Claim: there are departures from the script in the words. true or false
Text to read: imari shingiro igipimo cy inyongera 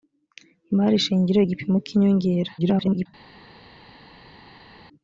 true